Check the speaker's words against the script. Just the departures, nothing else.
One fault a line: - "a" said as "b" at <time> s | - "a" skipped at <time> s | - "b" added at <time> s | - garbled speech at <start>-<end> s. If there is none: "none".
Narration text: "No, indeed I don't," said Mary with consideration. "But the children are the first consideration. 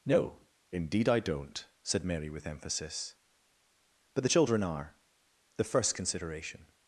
- "consideration" said as "emphasis" at 2.5 s